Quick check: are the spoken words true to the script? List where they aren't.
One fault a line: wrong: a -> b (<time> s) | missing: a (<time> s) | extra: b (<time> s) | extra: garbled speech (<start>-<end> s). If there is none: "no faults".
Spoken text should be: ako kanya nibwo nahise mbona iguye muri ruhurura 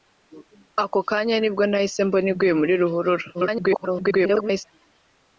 extra: garbled speech (3.3-4.6 s)